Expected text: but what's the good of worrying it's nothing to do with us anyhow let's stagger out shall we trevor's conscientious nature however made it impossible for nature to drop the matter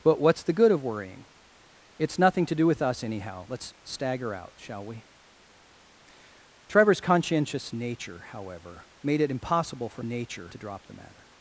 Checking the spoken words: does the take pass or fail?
pass